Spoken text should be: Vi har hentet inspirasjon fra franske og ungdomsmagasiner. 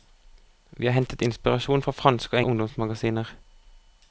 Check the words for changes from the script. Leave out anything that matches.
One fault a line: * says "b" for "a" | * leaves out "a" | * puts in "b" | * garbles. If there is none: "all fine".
all fine